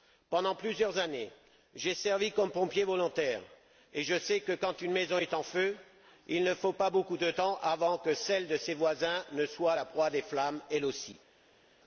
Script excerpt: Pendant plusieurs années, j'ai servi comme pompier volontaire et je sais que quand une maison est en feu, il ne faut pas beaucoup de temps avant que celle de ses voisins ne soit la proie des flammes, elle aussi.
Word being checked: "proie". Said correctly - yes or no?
yes